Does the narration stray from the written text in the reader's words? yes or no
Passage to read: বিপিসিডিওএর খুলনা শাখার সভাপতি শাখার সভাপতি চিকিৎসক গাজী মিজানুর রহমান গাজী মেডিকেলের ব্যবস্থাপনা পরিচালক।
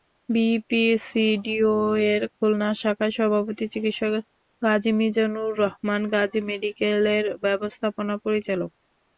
yes